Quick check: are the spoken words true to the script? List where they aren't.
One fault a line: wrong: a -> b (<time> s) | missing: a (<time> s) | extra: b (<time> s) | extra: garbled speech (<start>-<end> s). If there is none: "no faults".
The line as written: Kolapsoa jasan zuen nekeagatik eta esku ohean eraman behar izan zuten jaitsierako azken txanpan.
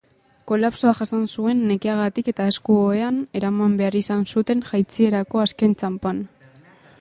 no faults